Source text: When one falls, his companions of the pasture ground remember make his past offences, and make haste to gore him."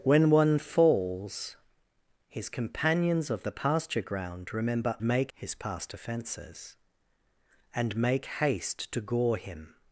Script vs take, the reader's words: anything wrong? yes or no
no